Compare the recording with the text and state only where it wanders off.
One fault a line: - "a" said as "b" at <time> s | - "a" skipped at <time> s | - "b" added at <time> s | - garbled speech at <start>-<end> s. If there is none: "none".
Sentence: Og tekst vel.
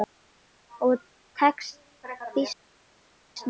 - "býsna" added at 2.0 s